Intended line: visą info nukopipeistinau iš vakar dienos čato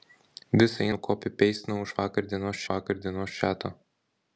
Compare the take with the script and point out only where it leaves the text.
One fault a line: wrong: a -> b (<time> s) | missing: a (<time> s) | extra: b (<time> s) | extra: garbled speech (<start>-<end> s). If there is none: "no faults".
missing: info (0.8 s)
extra: vakar dienos (2.7 s)